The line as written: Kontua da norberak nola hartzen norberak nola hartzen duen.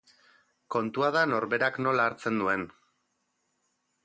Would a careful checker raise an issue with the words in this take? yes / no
yes